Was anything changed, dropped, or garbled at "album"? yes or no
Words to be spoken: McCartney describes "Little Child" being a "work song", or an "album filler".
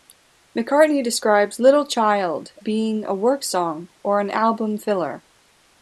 no